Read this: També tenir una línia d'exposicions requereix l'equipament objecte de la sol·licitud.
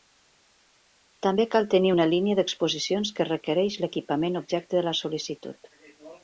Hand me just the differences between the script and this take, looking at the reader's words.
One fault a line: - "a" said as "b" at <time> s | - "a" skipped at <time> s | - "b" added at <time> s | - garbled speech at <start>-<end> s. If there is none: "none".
- "cal" added at 1.6 s
- "que" added at 3.2 s